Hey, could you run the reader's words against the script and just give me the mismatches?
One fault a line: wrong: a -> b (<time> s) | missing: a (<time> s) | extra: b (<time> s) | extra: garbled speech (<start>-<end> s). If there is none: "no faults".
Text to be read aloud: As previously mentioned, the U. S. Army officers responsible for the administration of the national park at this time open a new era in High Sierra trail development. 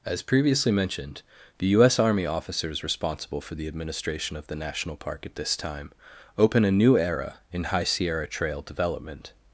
no faults